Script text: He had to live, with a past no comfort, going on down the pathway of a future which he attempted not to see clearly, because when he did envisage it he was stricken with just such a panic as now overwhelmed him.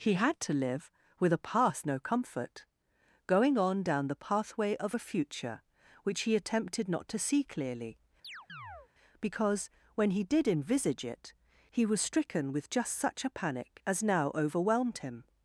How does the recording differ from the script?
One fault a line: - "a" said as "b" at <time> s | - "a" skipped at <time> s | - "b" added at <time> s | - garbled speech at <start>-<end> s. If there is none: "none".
none